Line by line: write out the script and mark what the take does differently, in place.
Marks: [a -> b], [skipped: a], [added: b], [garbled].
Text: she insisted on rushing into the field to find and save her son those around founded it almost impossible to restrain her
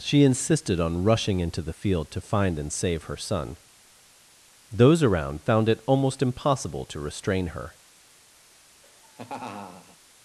she insisted on rushing into the field to find and save her son those around [founded -> found] it almost impossible to restrain her